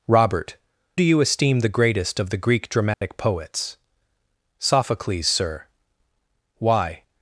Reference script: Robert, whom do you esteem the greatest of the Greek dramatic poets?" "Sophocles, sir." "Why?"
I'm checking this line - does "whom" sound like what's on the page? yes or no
no